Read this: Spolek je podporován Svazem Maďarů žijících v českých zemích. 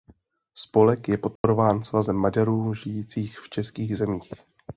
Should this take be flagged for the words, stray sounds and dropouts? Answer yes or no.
yes